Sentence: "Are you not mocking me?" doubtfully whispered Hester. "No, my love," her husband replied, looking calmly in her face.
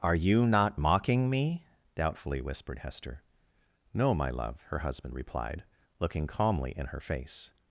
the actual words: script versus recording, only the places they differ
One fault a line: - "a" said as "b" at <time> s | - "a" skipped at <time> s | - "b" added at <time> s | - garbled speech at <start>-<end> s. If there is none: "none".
none